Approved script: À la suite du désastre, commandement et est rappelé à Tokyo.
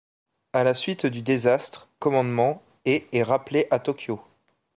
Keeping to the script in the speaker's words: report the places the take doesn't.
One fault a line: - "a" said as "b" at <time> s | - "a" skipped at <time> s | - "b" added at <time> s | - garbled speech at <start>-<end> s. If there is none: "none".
none